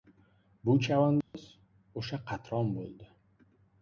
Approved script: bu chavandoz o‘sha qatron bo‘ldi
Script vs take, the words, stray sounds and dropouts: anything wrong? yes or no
yes